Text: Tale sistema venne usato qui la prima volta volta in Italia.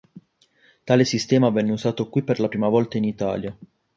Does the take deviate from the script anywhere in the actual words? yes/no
yes